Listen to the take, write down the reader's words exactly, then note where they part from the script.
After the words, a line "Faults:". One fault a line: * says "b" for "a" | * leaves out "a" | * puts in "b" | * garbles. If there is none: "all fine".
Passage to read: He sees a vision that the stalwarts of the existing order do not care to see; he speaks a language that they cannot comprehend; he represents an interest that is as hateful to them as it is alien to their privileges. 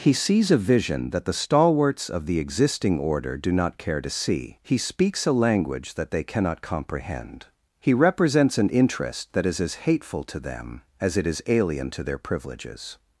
He sees a vision that the stalwarts of the existing order do not care to see; he speaks a language that they cannot comprehend; he represents an interest that is as hateful to them as it is alien to their privileges.
Faults:
all fine